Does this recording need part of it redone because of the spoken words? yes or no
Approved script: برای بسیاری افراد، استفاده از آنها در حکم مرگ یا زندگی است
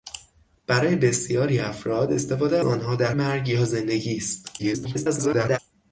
yes